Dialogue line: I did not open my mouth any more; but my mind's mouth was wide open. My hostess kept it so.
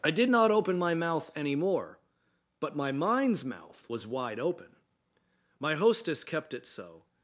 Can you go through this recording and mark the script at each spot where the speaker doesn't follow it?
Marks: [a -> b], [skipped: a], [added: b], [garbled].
I did not open my mouth any more; but my mind's mouth was wide open. My hostess kept it so.